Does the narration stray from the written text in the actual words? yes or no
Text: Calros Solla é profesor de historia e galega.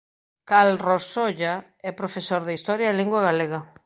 yes